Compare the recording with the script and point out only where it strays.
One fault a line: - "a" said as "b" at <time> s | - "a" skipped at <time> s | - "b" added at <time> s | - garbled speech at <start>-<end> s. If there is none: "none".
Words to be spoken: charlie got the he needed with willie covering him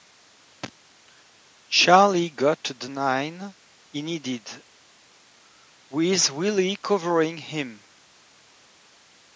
- "nine" added at 2.9 s